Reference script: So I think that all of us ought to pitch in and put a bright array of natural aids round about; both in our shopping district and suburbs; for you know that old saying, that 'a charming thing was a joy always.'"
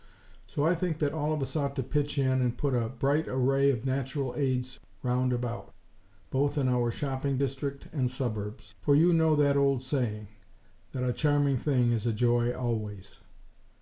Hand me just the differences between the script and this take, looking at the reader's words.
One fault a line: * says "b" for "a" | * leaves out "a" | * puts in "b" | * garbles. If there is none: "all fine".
* says "is" for "was"